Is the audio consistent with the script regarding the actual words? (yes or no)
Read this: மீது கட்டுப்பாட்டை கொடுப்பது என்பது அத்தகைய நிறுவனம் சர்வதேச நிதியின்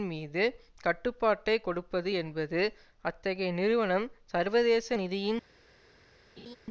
yes